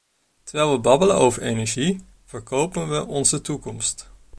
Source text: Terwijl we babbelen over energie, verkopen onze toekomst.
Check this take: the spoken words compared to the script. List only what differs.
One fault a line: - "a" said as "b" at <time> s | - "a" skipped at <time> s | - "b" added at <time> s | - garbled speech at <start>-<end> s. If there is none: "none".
- "we" added at 2.9 s